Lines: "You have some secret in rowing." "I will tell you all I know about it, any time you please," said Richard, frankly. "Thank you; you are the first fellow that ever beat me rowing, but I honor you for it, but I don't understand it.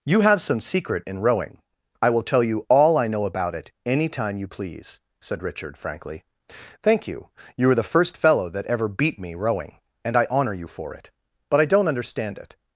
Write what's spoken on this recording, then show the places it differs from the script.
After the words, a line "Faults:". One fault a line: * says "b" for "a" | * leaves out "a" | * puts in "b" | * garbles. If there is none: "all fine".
"You have some secret in rowing." "I will tell you all I know about it, any time you please," said Richard, frankly. "Thank you; you are the first fellow that ever beat me rowing, and I honor you for it, but I don't understand it.
Faults:
* says "and" for "but"